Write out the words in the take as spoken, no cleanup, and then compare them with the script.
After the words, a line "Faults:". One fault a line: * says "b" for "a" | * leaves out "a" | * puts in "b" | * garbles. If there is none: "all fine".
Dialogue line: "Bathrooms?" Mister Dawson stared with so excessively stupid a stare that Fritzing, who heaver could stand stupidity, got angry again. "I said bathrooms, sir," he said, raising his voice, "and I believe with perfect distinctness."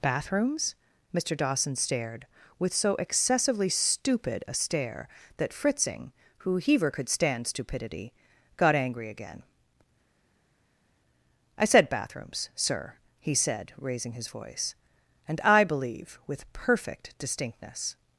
"Bathrooms?" Mister Dawson stared with so excessively stupid a stare that Fritzing, who heaver could stand stupidity, got angry again. "I said bathrooms, sir," he said, raising his voice, "and I believe with perfect distinctness."
Faults:
all fine